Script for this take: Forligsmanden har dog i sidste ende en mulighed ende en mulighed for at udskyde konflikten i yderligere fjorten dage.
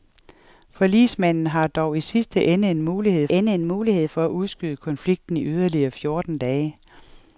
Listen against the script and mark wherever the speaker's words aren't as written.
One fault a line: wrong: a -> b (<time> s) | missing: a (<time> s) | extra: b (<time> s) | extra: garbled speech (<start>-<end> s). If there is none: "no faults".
no faults